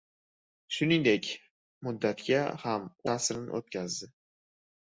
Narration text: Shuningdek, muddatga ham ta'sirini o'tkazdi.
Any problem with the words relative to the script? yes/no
no